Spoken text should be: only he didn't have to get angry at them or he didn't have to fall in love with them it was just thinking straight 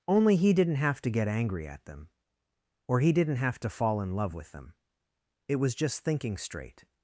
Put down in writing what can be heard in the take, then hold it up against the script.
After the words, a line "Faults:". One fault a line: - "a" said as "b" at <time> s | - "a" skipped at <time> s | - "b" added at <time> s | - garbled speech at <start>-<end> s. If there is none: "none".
only he didn't have to get angry at them or he didn't have to fall in love with them it was just thinking straight
Faults:
none